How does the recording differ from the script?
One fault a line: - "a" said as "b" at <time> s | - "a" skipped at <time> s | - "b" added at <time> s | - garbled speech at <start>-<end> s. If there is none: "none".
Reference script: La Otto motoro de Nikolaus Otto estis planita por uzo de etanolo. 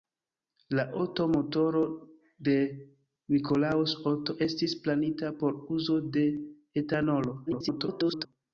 - garbled speech at 7.5-8.3 s